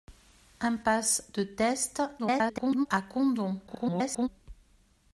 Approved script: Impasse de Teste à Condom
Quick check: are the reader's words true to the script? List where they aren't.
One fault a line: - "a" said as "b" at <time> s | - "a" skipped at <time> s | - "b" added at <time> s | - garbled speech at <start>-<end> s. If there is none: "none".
- garbled speech at 2.2-2.9 s
- garbled speech at 3.7-4.3 s